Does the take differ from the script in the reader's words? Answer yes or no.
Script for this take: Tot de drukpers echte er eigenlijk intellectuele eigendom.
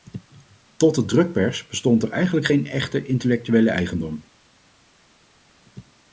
yes